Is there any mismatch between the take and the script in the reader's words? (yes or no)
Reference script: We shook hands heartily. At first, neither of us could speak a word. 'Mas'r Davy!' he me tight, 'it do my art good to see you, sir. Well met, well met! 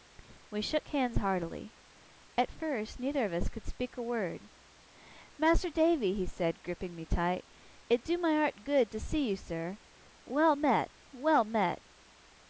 yes